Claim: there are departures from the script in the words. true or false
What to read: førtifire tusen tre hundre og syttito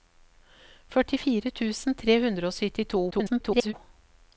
true